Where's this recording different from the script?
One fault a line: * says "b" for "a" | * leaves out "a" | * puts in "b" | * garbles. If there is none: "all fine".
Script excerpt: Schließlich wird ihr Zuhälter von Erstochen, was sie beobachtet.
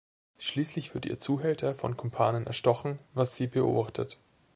* puts in "Kumpanen"